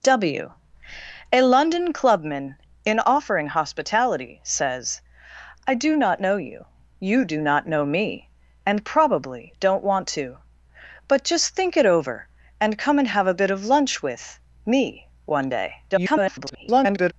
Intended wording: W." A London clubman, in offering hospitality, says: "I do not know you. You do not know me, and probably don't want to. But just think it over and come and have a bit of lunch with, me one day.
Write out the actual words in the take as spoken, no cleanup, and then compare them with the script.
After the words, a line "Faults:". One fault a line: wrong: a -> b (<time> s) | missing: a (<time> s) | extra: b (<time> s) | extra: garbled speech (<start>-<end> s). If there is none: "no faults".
W." A London clubman, in offering hospitality, says: "I do not know you. You do not know me, and probably don't want to. But just think it over and come and have a bit of lunch with, me one day. [garbled]
Faults:
extra: garbled speech (15.9-17.1 s)